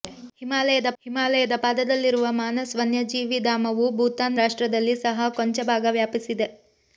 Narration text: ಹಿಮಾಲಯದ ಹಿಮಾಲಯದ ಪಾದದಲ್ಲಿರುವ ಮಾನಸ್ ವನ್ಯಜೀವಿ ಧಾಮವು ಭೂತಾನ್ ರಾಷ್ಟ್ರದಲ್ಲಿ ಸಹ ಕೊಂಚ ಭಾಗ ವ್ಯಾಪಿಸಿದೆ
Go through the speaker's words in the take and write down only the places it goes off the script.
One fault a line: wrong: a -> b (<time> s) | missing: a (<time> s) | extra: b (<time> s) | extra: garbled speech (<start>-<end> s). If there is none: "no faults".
no faults